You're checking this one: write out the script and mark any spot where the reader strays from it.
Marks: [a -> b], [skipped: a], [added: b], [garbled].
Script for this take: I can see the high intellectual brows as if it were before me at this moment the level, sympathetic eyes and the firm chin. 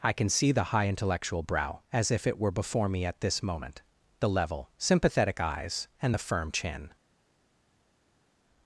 I can see the high intellectual [brows -> brow] as if it were before me at this moment the level, sympathetic eyes and the firm chin.